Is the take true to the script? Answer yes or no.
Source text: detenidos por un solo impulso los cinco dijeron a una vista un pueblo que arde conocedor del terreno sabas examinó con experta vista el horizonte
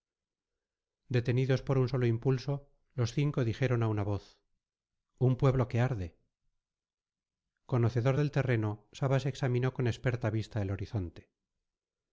no